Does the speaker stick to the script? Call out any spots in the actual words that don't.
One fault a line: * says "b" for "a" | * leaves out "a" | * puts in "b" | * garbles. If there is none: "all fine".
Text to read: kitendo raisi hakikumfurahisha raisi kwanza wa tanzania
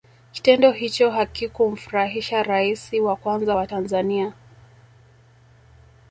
* says "hicho" for "raisi"
* puts in "wa"